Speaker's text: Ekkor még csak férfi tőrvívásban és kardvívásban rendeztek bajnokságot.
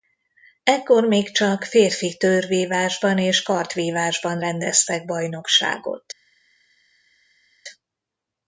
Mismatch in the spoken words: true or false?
false